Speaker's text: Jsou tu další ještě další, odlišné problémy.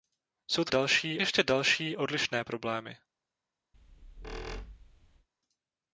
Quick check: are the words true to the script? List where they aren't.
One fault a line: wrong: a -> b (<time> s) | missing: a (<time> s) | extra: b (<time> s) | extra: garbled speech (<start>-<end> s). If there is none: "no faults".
no faults